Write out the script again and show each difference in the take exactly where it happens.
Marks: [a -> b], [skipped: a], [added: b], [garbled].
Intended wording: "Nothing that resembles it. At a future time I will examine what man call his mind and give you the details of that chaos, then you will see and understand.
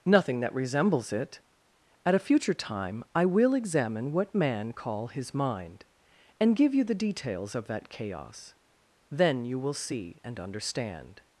"Nothing that resembles it. At a future time I will examine what man call his mind and give you the details of that chaos, then you will see and understand.